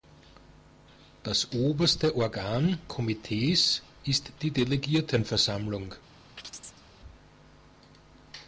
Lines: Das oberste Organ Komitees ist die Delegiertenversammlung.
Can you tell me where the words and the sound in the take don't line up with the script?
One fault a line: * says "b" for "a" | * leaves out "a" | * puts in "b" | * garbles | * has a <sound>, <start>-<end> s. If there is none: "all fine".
* has a chirp, 6.4-6.8 s